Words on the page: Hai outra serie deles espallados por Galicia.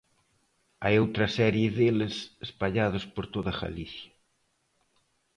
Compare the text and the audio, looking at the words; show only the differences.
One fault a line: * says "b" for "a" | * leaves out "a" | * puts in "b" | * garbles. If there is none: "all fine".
* puts in "toda"